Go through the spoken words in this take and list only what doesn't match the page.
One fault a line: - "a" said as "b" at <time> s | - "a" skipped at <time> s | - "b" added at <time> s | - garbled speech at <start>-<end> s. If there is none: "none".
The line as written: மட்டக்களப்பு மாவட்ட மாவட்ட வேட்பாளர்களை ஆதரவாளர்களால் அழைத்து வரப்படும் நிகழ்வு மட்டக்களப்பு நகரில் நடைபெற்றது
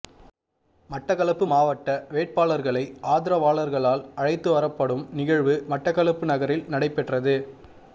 - "மாவட்ட" skipped at 1.9 s